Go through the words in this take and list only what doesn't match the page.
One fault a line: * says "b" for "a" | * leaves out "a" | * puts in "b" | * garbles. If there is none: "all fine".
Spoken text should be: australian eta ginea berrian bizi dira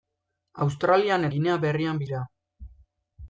* leaves out "eta"
* leaves out "bizi"